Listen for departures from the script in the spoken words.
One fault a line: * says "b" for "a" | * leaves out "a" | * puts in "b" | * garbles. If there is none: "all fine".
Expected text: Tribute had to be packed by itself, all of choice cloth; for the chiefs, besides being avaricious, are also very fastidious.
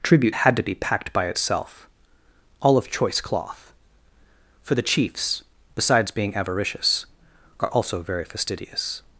all fine